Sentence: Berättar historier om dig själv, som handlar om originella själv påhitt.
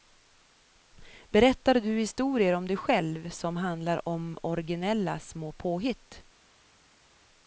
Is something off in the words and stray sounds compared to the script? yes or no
yes